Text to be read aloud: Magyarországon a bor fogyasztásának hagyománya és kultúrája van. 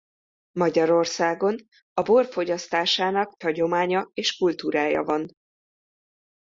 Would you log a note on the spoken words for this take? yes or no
no